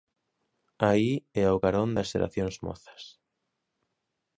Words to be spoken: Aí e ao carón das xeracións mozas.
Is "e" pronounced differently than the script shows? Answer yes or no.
no